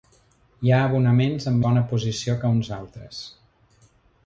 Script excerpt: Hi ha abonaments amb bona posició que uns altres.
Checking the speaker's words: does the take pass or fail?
pass